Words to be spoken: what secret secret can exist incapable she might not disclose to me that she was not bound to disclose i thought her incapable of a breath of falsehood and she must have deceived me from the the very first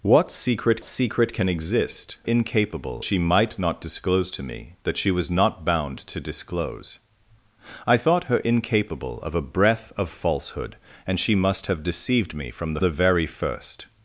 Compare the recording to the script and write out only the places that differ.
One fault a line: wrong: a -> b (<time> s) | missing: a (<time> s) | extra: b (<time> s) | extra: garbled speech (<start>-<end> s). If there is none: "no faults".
no faults